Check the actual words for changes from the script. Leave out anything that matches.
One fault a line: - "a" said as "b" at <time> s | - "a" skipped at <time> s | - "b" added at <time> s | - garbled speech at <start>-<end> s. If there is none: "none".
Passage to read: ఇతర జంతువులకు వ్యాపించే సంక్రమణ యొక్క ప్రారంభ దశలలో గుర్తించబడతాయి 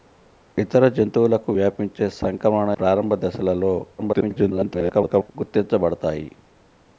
- "యొక్క" skipped at 2.7 s
- garbled speech at 4.0-5.3 s